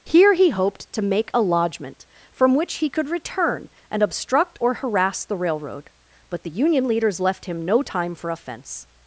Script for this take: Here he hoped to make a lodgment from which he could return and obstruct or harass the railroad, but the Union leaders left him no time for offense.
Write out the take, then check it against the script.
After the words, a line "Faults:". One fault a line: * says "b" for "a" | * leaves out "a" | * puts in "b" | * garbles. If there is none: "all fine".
Here he hoped to make a lodgment from which he could return and obstruct or harass the railroad, but the Union leaders left him no time for offense.
Faults:
all fine